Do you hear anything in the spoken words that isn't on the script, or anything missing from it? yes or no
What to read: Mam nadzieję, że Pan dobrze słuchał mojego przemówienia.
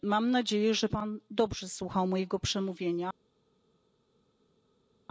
no